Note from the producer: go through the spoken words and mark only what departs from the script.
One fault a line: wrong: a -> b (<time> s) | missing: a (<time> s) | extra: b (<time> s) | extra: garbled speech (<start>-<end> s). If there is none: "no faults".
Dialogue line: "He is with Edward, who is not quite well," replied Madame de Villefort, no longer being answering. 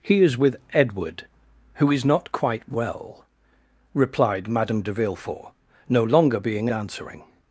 no faults